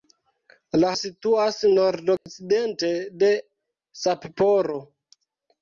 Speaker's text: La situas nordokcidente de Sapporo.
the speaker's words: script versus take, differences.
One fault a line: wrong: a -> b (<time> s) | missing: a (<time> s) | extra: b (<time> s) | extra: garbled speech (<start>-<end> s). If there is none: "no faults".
no faults